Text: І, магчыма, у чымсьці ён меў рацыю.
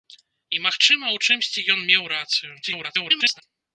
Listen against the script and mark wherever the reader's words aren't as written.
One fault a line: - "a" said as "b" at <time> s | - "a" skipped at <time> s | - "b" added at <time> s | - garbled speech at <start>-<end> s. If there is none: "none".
- garbled speech at 2.6-3.4 s